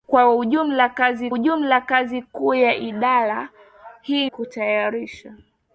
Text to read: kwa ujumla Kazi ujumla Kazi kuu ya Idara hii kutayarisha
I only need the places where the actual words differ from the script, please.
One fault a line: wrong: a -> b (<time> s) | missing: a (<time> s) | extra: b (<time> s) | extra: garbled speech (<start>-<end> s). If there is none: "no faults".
no faults